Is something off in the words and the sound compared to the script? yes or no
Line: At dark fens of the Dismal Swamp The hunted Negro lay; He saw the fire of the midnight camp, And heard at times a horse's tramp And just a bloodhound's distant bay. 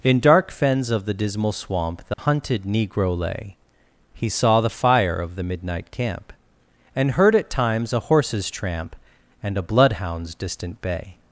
yes